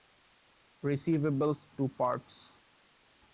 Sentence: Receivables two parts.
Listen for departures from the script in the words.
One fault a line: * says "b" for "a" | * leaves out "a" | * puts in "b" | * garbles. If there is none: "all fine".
all fine